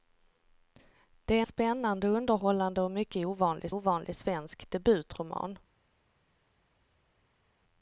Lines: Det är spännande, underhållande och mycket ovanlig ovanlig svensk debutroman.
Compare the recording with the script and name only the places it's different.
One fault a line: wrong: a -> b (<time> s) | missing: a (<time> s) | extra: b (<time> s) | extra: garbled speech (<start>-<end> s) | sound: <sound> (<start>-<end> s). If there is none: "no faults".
no faults